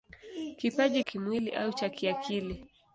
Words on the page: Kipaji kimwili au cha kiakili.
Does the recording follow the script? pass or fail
pass